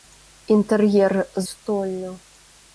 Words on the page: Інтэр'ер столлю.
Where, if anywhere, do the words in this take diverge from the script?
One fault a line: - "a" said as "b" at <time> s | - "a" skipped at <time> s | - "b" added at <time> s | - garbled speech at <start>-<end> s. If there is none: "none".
none